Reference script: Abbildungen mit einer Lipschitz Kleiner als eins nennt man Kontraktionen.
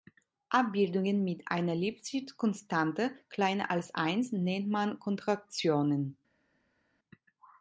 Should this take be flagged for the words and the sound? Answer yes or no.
yes